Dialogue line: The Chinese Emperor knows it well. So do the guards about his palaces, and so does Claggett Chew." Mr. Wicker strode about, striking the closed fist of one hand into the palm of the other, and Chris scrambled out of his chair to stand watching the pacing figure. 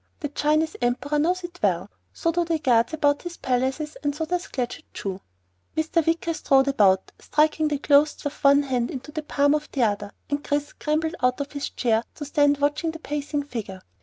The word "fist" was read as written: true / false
false